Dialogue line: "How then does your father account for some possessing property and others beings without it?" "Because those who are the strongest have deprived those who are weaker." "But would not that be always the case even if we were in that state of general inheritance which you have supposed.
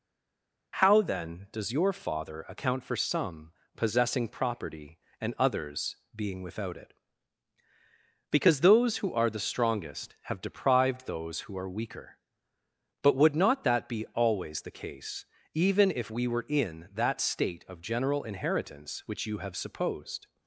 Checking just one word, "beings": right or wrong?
wrong